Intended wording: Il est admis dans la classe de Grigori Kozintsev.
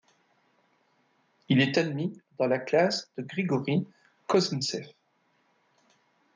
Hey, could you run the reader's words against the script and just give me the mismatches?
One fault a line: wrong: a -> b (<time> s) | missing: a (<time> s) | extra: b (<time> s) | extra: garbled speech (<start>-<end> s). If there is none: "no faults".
no faults